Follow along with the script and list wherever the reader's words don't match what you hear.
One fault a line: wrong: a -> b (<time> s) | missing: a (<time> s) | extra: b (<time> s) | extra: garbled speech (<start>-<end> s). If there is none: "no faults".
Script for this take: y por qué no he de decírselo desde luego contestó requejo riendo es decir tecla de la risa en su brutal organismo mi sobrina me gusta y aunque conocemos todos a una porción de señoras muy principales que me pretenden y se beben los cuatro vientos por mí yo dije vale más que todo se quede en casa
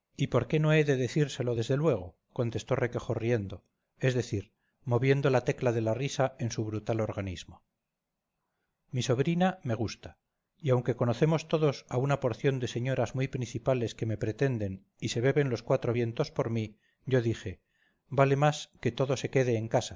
extra: moviendo la (4.8 s)